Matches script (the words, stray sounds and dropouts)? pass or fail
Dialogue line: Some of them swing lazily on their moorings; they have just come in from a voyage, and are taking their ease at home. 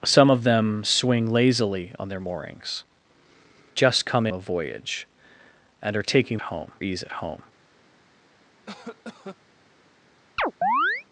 fail